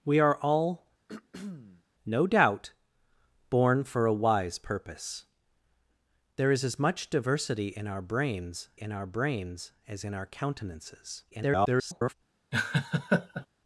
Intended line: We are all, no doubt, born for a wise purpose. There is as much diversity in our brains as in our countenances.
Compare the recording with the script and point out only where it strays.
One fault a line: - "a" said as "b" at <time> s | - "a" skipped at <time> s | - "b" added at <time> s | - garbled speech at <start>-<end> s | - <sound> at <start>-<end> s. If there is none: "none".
- throat clearing at 1.1-1.8 s
- "in our brains" added at 8.7 s
- garbled speech at 11.3-12.1 s
- laugh at 12.5-13.5 s